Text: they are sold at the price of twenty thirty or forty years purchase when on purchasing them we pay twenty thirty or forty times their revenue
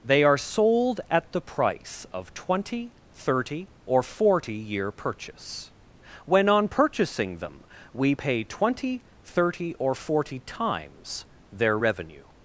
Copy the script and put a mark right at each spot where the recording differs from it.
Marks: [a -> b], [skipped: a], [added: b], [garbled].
they are sold at the price of twenty thirty or forty [years -> year] purchase when on purchasing them we pay twenty thirty or forty times their revenue